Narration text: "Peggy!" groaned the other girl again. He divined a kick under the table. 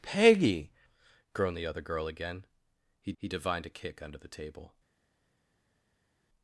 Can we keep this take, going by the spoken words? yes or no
no